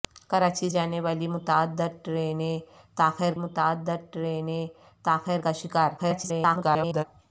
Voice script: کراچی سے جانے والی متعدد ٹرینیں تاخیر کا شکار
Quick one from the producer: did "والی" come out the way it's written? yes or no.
yes